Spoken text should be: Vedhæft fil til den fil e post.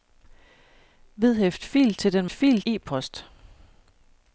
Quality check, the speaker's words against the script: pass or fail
pass